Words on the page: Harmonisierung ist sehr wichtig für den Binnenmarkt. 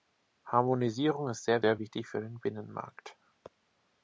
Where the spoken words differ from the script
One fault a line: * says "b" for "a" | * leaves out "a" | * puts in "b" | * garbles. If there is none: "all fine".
* puts in "sehr"